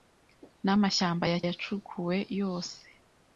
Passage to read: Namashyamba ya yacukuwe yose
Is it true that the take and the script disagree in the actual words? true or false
false